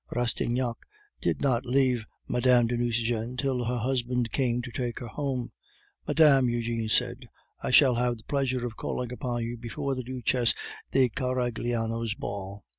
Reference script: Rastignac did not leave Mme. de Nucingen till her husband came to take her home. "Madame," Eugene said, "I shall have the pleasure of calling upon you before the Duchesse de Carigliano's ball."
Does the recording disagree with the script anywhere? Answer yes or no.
no